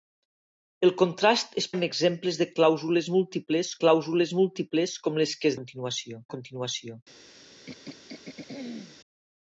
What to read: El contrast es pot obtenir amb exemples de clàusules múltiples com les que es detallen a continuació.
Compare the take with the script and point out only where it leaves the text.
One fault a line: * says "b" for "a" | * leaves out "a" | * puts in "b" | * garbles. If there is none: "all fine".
* leaves out "pot obtenir"
* puts in "clàusules múltiples"
* says "continuació" for "detallen"